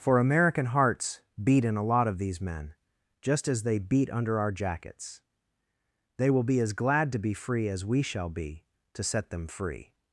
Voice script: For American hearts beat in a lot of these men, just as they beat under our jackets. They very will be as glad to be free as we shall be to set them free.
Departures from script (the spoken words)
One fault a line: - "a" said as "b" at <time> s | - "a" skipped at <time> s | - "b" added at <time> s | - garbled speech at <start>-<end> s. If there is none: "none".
- "very" skipped at 6.3 s